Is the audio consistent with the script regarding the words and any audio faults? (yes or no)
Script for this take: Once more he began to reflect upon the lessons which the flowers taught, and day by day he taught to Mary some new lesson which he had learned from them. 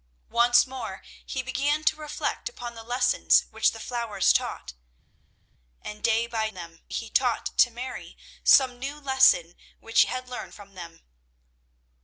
no